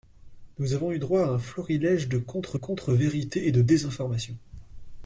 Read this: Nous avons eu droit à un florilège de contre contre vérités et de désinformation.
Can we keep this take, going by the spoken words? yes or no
yes